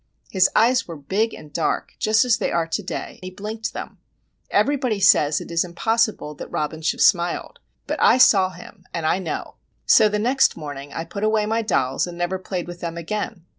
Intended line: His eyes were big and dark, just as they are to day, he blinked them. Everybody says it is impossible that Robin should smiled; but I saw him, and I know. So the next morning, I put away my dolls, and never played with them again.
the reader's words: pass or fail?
pass